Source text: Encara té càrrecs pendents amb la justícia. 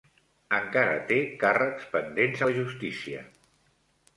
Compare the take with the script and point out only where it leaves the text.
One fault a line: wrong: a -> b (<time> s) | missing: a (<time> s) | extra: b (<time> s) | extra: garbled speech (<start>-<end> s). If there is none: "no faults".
missing: amb (2.4 s)